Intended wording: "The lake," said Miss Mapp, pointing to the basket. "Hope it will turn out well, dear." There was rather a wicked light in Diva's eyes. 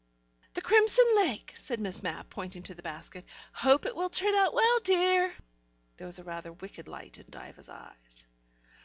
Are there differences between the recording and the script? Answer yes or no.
yes